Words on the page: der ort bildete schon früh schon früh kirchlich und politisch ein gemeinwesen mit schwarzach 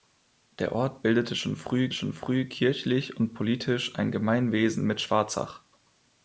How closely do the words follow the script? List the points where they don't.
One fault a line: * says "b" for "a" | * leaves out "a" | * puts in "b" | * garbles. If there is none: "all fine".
all fine